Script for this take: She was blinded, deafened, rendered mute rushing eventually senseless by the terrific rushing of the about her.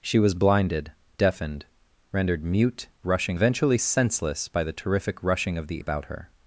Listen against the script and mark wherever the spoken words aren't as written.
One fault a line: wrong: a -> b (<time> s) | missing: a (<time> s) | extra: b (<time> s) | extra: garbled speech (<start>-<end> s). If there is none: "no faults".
no faults